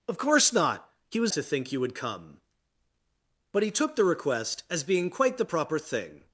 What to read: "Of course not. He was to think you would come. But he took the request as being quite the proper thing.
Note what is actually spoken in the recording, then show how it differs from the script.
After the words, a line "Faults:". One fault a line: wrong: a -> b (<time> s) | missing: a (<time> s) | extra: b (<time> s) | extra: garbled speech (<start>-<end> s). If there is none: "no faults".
"Of course not. He was to think you would come. But he took the request as being quite the proper thing.
Faults:
no faults